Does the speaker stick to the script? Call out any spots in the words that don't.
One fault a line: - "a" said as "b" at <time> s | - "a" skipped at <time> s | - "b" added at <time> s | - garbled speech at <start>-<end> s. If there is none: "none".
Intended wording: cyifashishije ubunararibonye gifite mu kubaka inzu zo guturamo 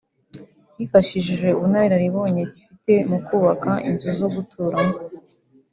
none